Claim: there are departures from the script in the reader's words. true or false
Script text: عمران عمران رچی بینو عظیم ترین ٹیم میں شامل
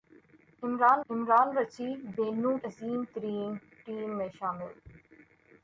false